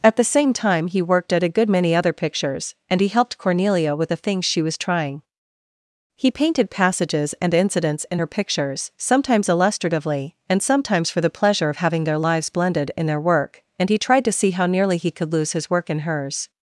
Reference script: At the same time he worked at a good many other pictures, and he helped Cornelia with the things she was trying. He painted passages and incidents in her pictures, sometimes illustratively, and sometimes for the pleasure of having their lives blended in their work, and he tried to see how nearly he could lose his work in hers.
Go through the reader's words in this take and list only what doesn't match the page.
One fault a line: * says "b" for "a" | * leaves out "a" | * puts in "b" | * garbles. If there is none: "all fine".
all fine